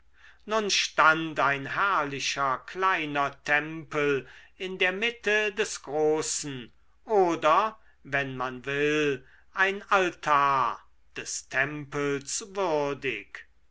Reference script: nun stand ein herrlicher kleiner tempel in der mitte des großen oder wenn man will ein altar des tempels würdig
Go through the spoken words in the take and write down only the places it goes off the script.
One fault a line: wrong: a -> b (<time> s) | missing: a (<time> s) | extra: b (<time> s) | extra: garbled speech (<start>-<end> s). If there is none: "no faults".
no faults